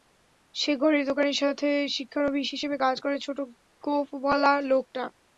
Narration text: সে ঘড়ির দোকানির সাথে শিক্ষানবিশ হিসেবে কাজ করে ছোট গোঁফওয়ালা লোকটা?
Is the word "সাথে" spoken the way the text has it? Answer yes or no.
yes